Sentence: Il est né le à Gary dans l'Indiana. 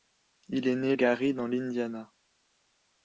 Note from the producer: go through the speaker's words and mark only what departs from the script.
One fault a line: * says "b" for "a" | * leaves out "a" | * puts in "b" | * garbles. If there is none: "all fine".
* leaves out "le à"